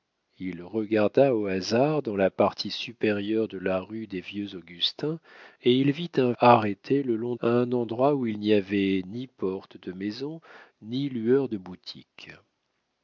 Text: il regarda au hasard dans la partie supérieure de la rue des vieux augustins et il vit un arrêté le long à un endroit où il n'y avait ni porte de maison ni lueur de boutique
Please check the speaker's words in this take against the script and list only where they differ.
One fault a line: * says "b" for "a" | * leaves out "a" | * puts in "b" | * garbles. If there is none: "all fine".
all fine